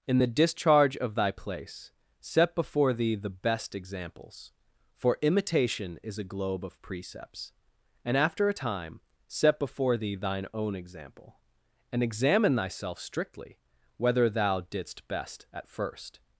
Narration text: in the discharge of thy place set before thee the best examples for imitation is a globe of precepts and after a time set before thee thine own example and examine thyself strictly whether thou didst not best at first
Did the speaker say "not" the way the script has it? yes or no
no